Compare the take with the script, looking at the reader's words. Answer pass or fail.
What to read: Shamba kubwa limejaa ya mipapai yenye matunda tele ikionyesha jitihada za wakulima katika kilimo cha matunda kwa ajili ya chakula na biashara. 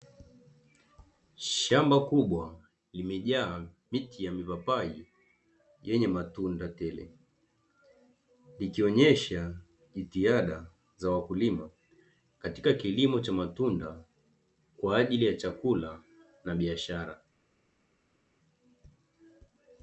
fail